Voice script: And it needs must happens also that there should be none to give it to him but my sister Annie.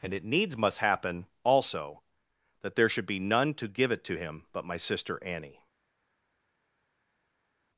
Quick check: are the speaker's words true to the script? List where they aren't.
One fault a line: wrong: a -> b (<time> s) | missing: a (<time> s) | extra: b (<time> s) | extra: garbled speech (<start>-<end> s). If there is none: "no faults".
wrong: happens -> happen (0.8 s)